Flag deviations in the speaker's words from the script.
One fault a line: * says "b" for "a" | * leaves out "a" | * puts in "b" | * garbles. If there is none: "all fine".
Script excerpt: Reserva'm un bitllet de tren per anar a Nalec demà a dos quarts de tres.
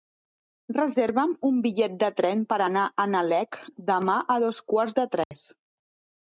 all fine